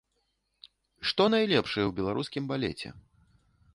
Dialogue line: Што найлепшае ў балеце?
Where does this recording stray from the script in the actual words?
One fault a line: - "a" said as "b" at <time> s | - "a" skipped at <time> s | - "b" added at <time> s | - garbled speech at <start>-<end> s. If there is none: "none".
- "беларускім" added at 2.0 s